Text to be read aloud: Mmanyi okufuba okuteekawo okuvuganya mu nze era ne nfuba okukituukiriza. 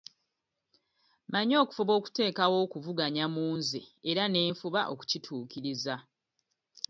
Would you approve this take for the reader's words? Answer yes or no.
yes